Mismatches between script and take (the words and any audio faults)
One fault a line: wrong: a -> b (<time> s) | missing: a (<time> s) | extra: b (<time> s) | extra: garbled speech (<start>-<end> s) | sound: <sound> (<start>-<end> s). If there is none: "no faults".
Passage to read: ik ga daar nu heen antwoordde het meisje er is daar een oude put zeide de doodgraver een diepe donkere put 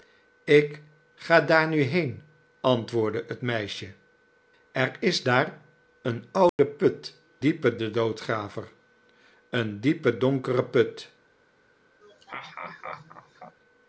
sound: dropout (6.5-6.6 s)
wrong: zeide -> diepe (7.4 s)
sound: laugh (12.0-13.6 s)